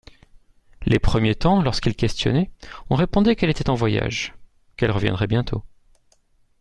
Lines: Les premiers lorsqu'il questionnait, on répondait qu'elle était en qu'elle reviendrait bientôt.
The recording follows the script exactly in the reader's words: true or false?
false